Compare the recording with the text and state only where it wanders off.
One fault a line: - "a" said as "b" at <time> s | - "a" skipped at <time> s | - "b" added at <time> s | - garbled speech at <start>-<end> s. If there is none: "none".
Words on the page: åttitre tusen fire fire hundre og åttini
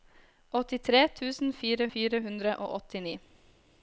none